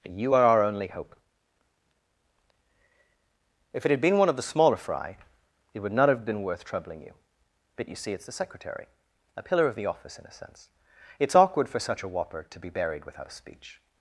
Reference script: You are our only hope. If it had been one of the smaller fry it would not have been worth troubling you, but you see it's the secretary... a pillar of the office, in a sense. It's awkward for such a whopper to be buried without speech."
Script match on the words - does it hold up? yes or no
yes